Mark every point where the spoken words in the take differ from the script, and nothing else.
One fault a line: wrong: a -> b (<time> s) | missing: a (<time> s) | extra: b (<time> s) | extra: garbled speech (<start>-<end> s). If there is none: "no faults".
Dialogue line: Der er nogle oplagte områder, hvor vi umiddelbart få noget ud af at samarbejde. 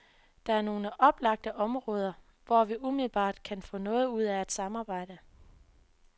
extra: kan (3.4 s)